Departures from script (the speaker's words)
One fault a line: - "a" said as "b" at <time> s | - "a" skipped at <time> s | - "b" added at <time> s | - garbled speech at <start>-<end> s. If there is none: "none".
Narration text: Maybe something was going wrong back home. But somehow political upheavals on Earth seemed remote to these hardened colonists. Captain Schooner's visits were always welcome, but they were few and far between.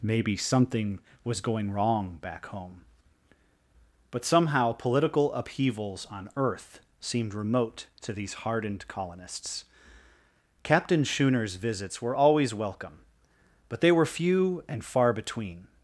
none